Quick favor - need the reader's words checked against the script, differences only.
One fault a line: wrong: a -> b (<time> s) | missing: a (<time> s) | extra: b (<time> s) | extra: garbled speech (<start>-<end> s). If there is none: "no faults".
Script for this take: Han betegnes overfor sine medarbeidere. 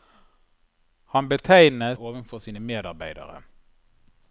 no faults